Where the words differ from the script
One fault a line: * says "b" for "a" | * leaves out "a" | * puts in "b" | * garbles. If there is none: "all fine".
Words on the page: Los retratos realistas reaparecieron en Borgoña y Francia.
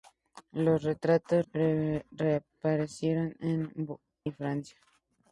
* leaves out "realistas"
* leaves out "Borgoña"